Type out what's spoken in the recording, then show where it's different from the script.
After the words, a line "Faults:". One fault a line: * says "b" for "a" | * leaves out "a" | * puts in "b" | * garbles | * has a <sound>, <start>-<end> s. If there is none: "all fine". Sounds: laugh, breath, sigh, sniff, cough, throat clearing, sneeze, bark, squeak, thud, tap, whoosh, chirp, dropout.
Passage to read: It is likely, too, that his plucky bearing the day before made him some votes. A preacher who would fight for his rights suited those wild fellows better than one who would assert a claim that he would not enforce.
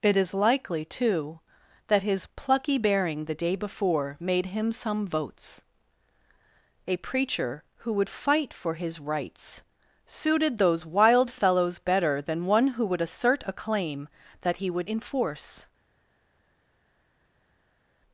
It is likely, too, that his plucky bearing the day before made him some votes. A preacher who would fight for his rights suited those wild fellows better than one who would assert a claim that he would enforce.
Faults:
* leaves out "not"